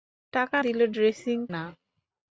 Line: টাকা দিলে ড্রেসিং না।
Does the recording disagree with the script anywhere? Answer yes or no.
no